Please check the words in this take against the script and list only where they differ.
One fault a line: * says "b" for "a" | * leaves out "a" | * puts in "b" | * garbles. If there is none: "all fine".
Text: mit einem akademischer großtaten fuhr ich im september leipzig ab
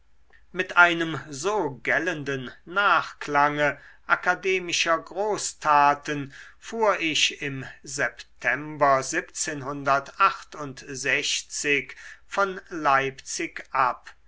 * puts in "so gellenden nachklange"
* puts in "von"